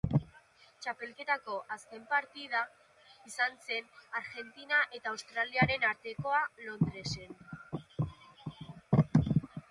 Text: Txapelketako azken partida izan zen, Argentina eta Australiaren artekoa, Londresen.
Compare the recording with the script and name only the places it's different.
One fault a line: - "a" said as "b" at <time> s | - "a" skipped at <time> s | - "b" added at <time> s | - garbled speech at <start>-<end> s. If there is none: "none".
none